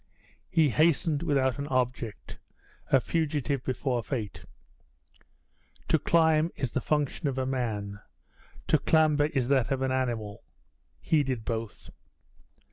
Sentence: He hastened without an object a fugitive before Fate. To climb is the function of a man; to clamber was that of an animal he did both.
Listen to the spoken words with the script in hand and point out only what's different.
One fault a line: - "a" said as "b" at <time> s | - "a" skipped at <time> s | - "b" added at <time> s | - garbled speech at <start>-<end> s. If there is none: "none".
- "was" said as "is" at 9.2 s